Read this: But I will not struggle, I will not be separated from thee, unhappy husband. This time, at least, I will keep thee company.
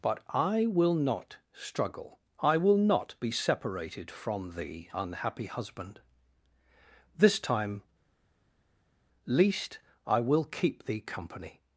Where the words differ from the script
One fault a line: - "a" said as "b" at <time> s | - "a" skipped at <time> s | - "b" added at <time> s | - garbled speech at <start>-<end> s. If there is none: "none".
- "at" skipped at 7.8 s